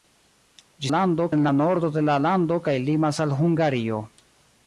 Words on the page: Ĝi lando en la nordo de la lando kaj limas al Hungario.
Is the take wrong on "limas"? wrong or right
right